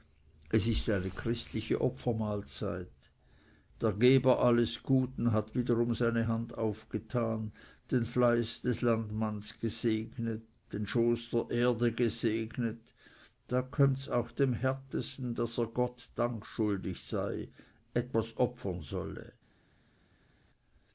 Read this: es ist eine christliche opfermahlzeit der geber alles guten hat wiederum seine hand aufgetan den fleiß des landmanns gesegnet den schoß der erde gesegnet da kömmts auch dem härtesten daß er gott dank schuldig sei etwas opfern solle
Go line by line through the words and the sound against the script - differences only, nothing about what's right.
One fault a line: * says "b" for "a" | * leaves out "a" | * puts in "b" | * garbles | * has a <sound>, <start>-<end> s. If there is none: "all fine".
all fine